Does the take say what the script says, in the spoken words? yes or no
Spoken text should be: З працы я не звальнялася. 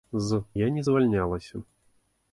no